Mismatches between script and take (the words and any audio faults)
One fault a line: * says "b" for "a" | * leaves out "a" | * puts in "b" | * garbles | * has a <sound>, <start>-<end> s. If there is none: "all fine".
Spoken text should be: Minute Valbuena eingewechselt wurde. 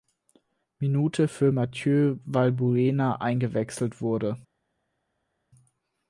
* puts in "für Mathieu"